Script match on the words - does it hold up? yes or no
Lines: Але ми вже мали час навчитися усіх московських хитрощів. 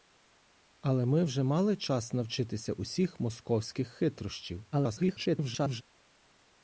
no